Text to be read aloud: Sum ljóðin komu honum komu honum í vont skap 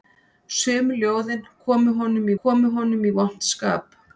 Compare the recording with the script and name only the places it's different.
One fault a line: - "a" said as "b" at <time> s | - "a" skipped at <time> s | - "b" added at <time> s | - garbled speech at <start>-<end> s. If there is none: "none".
none